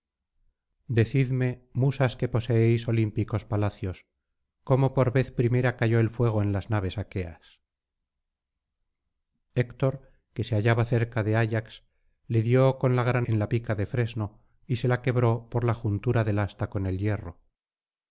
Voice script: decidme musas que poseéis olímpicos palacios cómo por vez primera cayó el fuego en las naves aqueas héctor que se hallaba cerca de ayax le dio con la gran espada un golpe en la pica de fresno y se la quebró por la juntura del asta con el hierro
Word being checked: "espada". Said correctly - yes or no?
no